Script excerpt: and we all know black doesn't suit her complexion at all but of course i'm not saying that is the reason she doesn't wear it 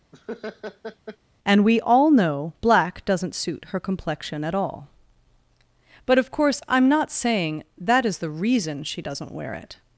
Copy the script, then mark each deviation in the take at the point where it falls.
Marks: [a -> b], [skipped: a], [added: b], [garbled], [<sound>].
[laugh] and we all know black doesn't suit her complexion at all but of course i'm not saying that is the reason she doesn't wear it